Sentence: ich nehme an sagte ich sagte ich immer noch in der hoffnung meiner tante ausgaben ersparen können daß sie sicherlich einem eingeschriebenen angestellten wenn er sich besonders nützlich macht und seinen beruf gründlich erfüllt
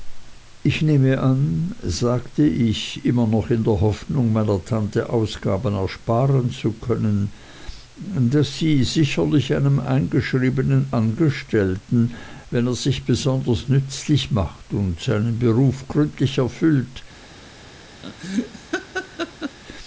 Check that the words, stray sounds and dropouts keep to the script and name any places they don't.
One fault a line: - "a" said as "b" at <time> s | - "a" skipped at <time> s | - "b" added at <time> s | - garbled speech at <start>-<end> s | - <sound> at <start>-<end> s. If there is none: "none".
- "sagte ich" skipped at 3.0 s
- "zu" added at 6.5 s
- laugh at 18.0-19.6 s